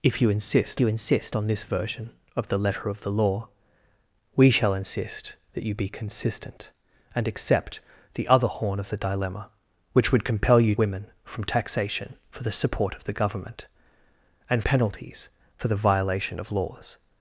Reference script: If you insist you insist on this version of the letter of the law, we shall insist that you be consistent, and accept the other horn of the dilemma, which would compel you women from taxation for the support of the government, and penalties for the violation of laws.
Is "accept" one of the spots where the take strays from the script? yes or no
no